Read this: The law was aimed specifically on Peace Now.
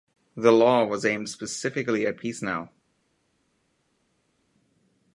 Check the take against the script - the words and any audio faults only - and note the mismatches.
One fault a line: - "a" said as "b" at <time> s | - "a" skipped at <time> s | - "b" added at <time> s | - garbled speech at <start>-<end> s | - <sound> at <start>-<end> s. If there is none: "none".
- "on" said as "at" at 2.1 s